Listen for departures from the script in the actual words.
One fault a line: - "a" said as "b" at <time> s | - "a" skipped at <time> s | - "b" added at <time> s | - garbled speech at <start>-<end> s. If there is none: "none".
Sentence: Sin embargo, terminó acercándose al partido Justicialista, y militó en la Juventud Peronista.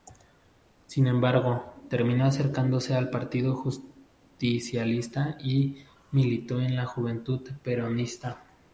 none